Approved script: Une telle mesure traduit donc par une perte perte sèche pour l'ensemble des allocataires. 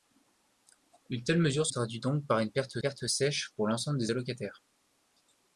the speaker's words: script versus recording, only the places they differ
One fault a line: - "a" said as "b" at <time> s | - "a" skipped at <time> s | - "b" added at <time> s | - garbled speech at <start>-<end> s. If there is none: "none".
none